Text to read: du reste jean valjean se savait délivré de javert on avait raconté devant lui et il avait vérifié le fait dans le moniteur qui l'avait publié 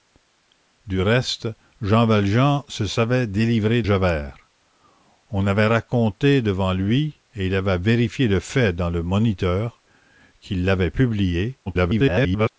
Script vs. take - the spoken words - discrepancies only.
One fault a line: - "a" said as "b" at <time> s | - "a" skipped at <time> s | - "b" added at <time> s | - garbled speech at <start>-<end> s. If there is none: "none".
- "de" skipped at 3.8 s
- garbled speech at 11.7-12.5 s